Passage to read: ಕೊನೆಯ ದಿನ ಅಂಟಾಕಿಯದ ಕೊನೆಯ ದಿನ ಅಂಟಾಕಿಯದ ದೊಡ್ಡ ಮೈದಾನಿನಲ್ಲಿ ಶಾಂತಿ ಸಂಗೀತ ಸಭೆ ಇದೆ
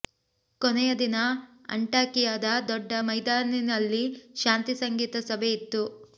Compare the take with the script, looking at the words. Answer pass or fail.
fail